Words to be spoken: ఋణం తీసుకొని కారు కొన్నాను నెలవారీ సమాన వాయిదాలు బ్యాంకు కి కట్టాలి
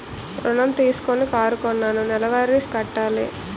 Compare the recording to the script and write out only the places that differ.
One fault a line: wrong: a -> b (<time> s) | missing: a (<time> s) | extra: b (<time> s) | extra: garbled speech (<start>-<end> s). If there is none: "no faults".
missing: సమాన వాయిదాలు బ్యాంకు (2.6 s)